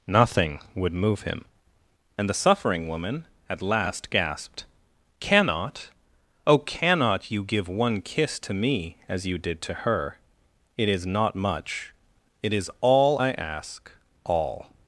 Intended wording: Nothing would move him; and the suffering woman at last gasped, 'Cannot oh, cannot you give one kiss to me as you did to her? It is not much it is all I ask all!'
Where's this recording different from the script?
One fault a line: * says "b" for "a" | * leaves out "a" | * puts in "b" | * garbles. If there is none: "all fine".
all fine